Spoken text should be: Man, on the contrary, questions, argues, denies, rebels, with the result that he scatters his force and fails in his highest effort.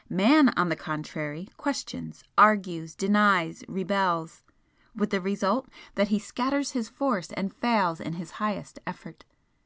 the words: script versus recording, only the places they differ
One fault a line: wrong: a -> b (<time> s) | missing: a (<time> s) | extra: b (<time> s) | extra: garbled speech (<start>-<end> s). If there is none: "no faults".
no faults